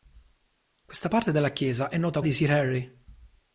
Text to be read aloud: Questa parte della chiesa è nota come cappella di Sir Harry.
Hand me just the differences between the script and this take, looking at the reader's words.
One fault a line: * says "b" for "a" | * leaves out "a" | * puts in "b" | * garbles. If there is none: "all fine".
* leaves out "come cappella"